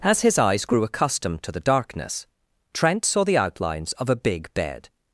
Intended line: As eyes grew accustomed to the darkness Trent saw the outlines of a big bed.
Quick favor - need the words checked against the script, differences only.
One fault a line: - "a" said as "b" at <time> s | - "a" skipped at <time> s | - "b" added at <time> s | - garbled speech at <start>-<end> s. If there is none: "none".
- "his" added at 0.2 s